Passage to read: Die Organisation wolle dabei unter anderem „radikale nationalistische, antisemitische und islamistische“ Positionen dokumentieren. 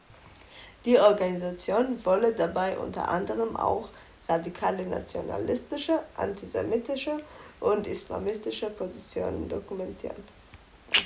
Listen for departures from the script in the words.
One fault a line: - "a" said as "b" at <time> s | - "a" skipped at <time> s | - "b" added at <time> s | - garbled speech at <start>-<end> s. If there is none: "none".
- "auch" added at 3.5 s